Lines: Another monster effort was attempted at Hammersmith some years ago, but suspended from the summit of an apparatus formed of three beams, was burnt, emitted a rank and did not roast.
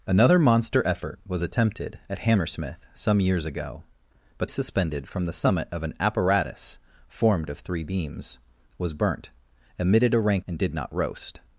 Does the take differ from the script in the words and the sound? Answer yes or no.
no